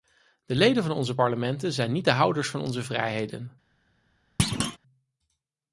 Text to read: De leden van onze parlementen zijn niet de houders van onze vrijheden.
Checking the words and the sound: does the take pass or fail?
fail